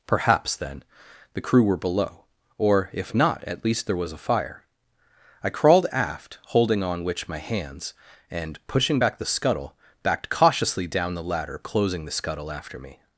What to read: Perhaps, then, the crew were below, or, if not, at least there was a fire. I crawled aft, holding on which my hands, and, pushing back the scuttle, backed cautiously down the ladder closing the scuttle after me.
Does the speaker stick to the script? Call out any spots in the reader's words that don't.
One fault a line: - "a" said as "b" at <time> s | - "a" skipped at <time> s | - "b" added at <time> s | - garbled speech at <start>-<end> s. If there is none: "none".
none